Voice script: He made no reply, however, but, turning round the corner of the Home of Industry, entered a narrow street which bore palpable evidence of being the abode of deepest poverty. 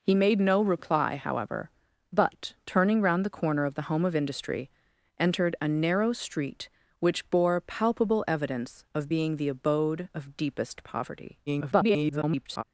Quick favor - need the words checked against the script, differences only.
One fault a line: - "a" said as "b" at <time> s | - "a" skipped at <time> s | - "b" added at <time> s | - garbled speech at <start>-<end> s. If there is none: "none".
- garbled speech at 11.5-12.6 s